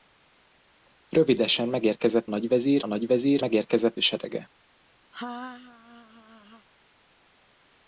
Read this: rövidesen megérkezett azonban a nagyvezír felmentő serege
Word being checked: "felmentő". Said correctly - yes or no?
no